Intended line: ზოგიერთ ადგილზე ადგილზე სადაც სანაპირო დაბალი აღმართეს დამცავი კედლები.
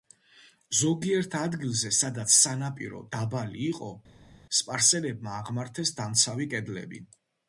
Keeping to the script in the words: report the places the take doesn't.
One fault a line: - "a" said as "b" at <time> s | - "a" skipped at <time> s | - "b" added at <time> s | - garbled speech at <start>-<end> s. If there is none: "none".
- "ადგილზე" skipped at 1.9 s
- "იყო სპარსელებმა" added at 3.7 s